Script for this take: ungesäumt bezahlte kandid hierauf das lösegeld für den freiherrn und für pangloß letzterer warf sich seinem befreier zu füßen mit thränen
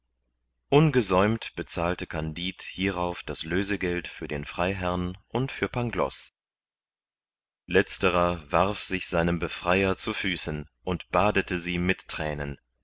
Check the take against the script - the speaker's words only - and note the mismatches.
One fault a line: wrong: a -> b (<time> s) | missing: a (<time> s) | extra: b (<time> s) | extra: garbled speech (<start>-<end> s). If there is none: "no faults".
extra: und badete sie (10.8 s)